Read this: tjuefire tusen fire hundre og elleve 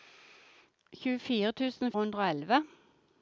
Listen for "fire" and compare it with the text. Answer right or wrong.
wrong